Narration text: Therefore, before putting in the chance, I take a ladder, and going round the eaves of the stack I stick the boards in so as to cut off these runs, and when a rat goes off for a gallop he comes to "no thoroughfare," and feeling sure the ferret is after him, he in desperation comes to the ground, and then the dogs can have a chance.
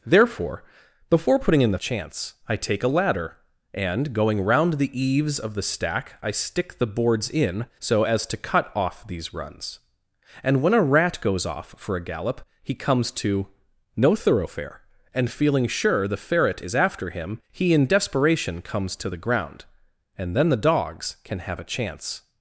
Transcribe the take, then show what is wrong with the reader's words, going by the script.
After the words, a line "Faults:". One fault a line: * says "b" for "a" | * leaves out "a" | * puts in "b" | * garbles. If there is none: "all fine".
Therefore, before putting in the chance, I take a ladder, and going round the eaves of the stack I stick the boards in so as to cut off these runs, and when a rat goes off for a gallop he comes to "no thoroughfare," and feeling sure the ferret is after him, he in desperation comes to the ground, and then the dogs can have a chance.
Faults:
all fine